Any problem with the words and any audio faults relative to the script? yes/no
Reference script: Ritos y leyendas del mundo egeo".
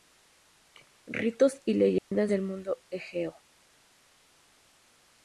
yes